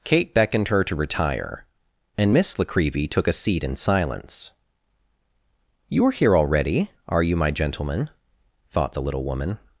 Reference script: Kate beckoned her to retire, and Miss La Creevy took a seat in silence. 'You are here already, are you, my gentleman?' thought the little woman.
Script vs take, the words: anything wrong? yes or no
no